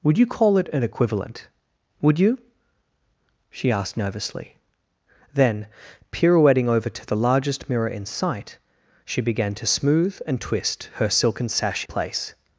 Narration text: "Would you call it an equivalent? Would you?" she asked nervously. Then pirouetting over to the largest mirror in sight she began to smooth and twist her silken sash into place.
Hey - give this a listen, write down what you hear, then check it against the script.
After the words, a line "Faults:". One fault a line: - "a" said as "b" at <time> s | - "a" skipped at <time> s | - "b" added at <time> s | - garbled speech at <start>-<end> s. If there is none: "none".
"Would you call it an equivalent? Would you?" she asked nervously. Then pirouetting over to the largest mirror in sight she began to smooth and twist her silken sash place.
Faults:
- "into" skipped at 11.8 s